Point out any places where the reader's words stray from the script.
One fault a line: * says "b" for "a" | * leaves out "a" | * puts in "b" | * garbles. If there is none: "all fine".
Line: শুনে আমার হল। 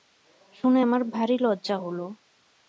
* puts in "ভারি লজ্জা"